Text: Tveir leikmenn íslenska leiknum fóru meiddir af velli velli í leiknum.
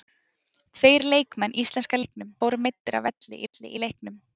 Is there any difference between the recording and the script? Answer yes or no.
no